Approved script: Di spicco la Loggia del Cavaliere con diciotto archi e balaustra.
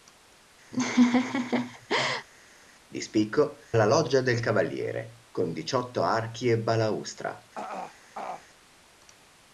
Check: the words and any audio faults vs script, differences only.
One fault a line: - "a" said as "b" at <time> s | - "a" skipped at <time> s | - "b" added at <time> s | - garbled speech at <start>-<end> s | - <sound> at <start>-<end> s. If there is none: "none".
- laugh at 0.7-2.3 s
- throat clearing at 7.6-8.5 s